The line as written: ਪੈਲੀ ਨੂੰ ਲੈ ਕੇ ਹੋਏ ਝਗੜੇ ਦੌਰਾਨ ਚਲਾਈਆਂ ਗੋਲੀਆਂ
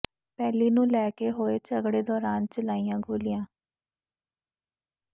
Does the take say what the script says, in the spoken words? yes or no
yes